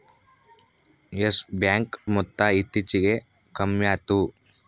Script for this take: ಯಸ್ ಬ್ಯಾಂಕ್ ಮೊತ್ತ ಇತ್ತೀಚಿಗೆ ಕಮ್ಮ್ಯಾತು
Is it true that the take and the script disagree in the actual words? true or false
false